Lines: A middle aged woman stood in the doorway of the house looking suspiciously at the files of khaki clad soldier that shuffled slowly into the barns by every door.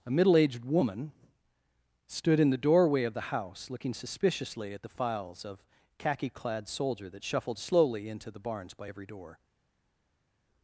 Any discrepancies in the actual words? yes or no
no